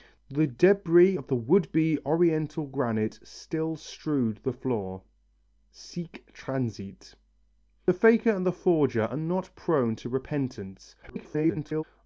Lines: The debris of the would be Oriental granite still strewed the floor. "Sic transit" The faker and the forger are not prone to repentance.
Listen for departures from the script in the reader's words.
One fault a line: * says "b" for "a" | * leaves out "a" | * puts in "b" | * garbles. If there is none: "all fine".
* garbles